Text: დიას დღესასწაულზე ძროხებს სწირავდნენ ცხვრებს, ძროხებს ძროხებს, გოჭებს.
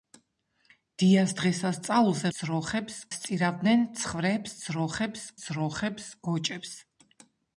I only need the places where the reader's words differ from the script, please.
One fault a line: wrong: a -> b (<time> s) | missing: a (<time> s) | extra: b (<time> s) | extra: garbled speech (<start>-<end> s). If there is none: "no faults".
no faults